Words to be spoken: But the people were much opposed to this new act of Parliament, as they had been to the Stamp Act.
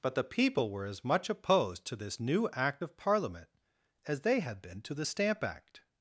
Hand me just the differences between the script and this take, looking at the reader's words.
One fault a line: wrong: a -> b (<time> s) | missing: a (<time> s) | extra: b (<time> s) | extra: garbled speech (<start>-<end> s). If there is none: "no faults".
extra: as (0.8 s)